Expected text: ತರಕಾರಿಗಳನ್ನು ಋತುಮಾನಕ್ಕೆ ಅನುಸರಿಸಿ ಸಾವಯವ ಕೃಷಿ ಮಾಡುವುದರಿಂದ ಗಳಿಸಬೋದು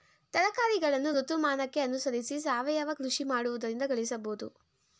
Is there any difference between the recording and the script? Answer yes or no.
no